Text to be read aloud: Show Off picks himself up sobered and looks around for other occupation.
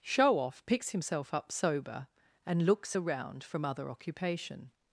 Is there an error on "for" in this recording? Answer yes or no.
yes